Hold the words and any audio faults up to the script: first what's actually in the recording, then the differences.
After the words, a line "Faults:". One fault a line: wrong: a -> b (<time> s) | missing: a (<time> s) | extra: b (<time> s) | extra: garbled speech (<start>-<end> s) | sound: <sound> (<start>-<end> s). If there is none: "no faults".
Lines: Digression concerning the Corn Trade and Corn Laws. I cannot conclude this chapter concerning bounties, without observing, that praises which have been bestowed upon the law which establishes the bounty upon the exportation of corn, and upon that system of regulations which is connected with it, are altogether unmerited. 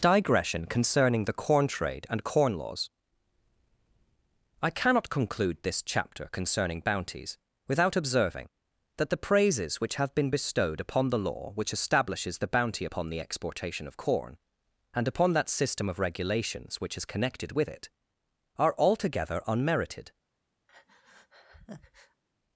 Digression concerning the Corn Trade and Corn Laws. I cannot conclude this chapter concerning bounties, without observing, that the praises which have been bestowed upon the law which establishes the bounty upon the exportation of corn, and upon that system of regulations which is connected with it, are altogether unmerited.
Faults:
extra: the (9.1 s)
sound: breath (20.7-22.2 s)